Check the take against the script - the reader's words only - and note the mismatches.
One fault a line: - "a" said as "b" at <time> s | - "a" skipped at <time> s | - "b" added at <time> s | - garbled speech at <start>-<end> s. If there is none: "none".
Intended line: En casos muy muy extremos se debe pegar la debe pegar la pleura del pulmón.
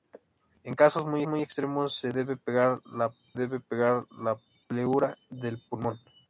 none